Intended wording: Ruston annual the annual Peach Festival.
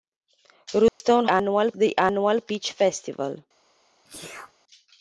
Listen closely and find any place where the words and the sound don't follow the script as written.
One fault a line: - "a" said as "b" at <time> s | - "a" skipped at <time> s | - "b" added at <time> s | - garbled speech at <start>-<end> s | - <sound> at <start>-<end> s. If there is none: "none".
- dropout at 0.9-1.0 s
- sneeze at 4.0-4.5 s